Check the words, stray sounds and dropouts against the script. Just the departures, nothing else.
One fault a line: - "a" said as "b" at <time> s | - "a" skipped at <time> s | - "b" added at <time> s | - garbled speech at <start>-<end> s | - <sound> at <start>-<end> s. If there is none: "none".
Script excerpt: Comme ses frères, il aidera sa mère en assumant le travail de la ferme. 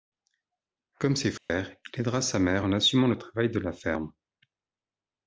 - dropout at 1.4-1.5 s